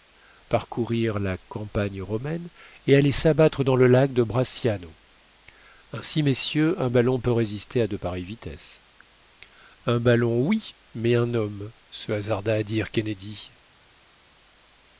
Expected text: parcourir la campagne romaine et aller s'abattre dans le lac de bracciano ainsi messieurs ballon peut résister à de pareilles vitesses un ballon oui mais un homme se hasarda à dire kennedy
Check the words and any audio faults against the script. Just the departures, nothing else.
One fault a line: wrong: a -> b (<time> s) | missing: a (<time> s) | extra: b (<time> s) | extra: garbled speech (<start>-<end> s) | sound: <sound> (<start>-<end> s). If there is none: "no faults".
extra: un (6.8 s)